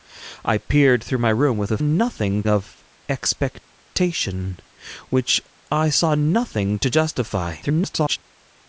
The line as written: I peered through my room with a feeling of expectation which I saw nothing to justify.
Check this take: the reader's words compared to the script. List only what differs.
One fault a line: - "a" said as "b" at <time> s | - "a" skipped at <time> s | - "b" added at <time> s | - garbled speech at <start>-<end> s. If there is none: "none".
- "feeling" said as "nothing" at 1.8 s
- garbled speech at 7.6-8.2 s